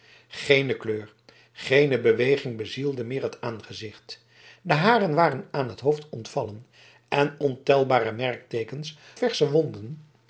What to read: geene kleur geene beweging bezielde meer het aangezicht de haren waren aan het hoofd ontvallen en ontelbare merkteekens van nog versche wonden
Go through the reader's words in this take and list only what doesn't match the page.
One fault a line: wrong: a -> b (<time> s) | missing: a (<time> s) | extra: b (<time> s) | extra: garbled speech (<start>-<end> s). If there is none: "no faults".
missing: van nog (9.0 s)